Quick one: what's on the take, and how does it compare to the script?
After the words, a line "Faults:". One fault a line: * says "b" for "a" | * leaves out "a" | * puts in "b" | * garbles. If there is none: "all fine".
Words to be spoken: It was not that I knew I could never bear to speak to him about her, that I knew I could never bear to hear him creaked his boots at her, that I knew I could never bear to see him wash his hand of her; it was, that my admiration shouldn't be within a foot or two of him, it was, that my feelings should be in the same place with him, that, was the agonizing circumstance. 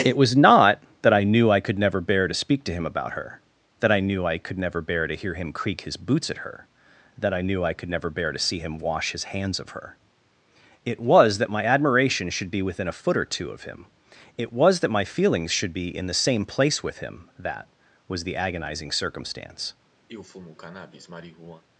It was not that I knew I could never bear to speak to him about her, that I knew I could never bear to hear him creak his boots at her, that I knew I could never bear to see him wash his hands of her; it was, that my admiration should be within a foot or two of him, it was, that my feelings should be in the same place with him, that, was the agonizing circumstance.
Faults:
* says "creak" for "creaked"
* says "hands" for "hand"
* says "should" for "shouldn't"